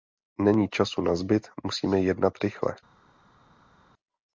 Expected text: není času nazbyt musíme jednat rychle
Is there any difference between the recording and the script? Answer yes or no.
no